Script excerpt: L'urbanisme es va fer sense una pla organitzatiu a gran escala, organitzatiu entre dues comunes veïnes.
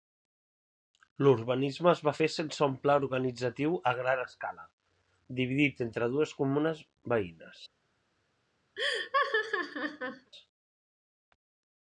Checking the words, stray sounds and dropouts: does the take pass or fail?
fail